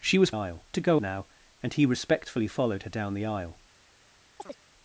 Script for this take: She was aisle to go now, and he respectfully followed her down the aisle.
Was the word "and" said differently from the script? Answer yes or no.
no